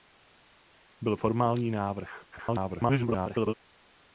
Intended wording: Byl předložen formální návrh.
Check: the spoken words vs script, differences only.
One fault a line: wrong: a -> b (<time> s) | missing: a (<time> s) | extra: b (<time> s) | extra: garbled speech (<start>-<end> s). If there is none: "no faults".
missing: předložen (1.2 s)
extra: garbled speech (2.3-3.5 s)